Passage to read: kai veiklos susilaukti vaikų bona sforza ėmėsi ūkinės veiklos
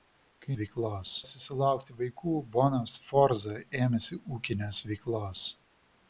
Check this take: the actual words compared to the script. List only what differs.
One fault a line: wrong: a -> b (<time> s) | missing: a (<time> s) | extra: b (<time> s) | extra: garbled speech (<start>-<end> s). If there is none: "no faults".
no faults